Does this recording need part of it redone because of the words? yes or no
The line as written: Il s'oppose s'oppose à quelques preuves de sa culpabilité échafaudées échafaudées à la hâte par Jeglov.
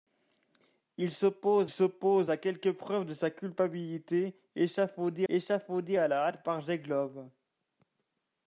no